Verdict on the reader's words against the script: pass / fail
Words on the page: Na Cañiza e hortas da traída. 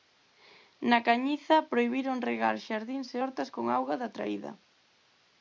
fail